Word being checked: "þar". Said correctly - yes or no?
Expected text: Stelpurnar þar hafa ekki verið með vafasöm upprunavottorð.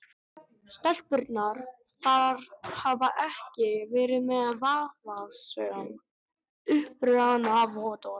yes